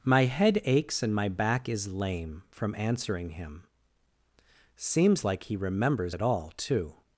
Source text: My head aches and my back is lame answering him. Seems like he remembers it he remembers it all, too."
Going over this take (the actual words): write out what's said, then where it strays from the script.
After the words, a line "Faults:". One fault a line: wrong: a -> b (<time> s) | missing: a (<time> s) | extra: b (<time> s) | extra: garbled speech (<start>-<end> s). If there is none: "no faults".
My head aches and my back is lame from answering him. Seems like he remembers it all, too."
Faults:
extra: from (2.5 s)
missing: he remembers it (6.2 s)